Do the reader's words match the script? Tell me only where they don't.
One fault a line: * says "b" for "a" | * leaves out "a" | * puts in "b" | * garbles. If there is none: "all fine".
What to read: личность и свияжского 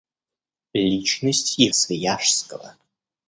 all fine